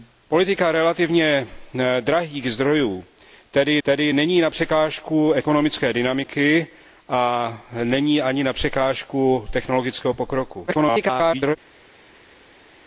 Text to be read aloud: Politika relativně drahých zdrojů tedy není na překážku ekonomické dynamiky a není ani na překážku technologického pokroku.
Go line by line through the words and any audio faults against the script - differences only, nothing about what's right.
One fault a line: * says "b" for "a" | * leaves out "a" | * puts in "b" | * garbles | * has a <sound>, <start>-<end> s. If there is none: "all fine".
* puts in "tedy"
* garbles